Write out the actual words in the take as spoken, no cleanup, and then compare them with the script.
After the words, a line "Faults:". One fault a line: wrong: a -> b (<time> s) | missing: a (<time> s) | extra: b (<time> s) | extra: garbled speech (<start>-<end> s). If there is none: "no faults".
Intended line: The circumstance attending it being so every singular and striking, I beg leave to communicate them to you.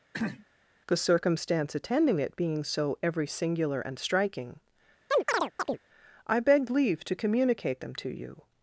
The circumstance attending it being so every singular and striking, I beg leave to communicate them to you.
Faults:
no faults